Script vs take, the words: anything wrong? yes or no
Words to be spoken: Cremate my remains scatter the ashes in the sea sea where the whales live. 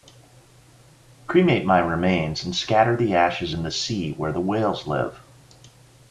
yes